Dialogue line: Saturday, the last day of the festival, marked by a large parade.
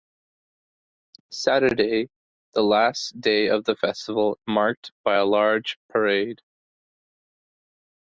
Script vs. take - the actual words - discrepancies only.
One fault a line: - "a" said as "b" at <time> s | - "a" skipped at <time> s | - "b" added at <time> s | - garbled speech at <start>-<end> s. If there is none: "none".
none